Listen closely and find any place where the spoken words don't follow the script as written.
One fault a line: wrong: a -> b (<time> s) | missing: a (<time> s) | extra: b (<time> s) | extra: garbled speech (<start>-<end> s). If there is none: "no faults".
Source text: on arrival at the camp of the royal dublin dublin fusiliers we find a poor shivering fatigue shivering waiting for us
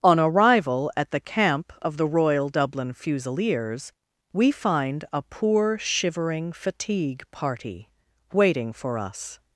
missing: dublin (2.9 s)
wrong: shivering -> party (7.3 s)